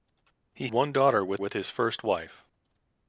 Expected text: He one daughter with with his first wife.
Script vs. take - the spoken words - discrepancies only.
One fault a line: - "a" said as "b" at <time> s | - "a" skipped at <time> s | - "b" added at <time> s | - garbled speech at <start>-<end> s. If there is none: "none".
none